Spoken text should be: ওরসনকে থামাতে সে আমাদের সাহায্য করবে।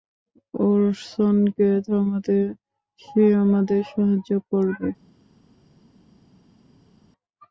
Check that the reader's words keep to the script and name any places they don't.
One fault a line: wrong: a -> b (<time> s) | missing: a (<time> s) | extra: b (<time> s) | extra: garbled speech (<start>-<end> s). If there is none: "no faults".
no faults